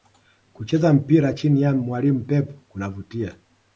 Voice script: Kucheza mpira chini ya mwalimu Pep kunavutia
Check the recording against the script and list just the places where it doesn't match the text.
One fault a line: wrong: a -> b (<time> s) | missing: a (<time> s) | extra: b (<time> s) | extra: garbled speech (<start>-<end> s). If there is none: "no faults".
no faults